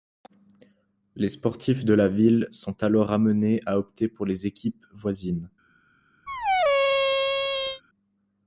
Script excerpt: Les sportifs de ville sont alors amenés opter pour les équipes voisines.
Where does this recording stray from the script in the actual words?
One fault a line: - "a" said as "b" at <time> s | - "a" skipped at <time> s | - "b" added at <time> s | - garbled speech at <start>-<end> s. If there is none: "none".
- "la" added at 1.9 s
- "à" added at 3.7 s